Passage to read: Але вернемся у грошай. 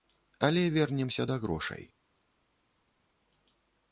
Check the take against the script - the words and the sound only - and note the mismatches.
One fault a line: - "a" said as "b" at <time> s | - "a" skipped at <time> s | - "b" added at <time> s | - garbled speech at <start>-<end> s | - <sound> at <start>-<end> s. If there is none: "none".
- "у" said as "да" at 1.2 s